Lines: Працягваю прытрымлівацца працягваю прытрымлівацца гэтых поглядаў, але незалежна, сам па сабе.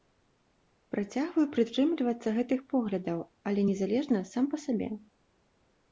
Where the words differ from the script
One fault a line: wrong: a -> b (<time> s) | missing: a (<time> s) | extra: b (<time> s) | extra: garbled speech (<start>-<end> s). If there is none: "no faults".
missing: працягваю прытрымлівацца (2.3 s)